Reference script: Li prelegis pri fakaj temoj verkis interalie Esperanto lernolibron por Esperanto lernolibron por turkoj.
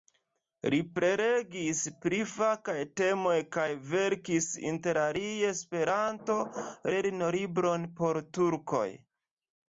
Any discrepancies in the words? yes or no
yes